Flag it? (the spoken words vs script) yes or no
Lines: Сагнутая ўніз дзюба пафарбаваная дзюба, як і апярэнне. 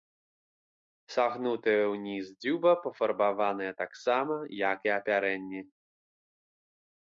yes